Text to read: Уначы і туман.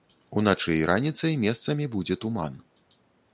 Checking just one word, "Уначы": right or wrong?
right